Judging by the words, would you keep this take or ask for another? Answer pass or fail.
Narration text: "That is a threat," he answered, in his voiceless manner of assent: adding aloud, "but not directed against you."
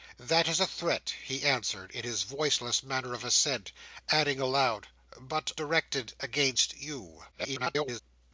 fail